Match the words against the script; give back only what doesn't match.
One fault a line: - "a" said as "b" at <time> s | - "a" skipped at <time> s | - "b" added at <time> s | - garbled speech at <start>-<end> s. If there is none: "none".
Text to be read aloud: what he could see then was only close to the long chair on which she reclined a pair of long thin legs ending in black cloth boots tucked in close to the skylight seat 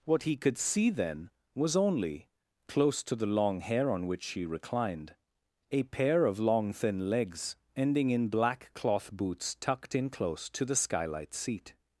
- "chair" said as "hair" at 3.6 s